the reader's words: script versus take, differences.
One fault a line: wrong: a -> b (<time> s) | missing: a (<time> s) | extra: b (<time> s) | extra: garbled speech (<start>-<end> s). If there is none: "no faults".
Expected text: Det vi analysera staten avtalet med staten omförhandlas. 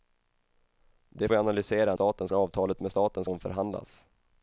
no faults